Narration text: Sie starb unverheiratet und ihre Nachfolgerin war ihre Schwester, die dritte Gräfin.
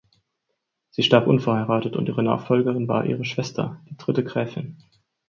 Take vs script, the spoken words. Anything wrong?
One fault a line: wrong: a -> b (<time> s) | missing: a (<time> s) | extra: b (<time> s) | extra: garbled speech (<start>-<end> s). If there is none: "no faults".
no faults